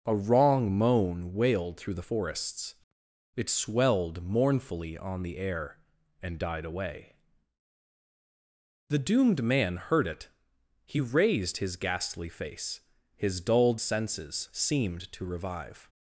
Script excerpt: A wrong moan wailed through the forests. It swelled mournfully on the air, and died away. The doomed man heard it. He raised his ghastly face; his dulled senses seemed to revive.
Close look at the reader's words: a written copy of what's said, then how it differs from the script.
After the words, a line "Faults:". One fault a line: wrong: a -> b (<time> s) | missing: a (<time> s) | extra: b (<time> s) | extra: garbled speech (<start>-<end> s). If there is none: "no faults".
A wrong moan wailed through the forests. It swelled mournfully on the air, and died away. The doomed man heard it. He raised his ghastly face; his dulled senses seemed to revive.
Faults:
no faults